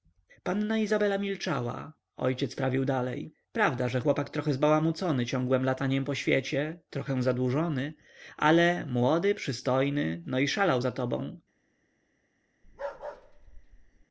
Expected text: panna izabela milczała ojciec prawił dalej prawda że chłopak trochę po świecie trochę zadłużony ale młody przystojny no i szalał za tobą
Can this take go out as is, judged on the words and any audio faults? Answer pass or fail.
fail